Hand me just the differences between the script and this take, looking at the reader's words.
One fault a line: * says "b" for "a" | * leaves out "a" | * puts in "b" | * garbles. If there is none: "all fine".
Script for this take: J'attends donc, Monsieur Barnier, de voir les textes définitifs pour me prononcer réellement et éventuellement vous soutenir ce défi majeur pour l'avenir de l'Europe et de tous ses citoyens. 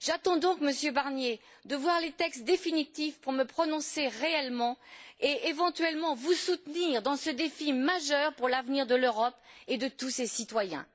* puts in "dans"